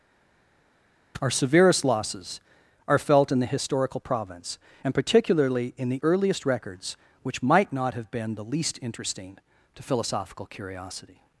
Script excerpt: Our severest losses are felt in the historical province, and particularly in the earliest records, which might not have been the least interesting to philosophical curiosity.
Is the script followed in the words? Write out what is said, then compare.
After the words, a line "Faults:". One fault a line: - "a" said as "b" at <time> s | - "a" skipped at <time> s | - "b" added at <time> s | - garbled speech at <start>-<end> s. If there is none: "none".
Our severest losses are felt in the historical province, and particularly in the earliest records, which might not have been the least interesting to philosophical curiosity.
Faults:
none